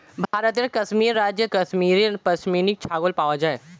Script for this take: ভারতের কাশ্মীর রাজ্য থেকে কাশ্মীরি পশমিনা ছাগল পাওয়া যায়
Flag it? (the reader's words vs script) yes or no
yes